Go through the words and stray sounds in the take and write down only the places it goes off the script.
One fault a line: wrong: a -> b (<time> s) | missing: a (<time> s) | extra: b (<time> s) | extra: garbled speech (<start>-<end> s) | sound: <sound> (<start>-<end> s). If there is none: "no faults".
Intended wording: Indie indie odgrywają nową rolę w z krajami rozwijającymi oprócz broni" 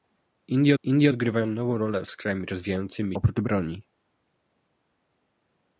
no faults